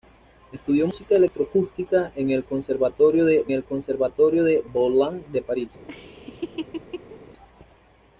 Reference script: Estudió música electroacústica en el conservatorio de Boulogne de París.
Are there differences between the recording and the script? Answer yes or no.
yes